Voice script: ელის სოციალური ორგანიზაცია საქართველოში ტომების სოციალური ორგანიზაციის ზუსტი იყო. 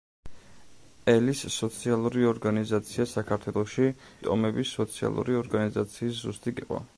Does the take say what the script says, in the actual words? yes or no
yes